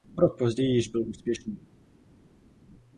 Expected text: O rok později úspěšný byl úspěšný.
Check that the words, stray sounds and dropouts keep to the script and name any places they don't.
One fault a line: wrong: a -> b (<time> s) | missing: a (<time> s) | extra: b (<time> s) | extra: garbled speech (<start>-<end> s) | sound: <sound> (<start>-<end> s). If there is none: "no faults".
wrong: úspěšný -> již (0.8 s)